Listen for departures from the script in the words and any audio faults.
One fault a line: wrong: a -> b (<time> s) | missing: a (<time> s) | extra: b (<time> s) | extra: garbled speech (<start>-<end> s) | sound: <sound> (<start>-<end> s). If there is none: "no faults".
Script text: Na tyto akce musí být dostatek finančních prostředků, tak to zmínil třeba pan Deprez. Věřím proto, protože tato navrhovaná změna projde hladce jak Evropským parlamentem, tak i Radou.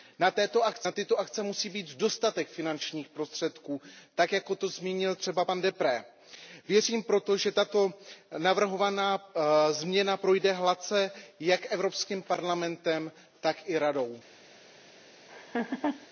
extra: jako (4.3 s)
wrong: protože -> že (7.4 s)
sound: laugh (15.3-16.1 s)